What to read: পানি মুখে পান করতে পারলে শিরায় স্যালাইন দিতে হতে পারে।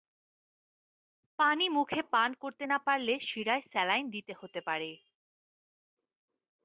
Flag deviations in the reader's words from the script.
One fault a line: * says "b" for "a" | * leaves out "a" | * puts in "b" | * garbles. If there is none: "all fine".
* puts in "না"